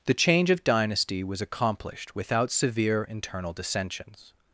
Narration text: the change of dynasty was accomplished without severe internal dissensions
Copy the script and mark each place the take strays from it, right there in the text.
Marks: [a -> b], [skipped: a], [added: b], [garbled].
the change of dynasty was accomplished without severe internal dissensions